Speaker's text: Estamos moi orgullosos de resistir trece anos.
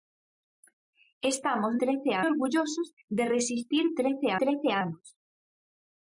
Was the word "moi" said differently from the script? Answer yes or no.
yes